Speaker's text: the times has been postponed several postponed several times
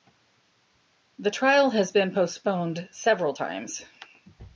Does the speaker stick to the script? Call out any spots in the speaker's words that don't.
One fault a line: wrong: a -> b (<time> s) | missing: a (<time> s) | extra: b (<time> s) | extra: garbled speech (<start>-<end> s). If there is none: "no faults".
wrong: times -> trial (1.3 s)
missing: postponed several (3.3 s)